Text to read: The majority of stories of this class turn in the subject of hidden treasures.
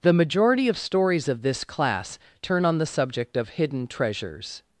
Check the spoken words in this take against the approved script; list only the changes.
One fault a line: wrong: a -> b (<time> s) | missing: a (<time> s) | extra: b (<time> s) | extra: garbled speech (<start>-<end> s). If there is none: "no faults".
wrong: in -> on (2.6 s)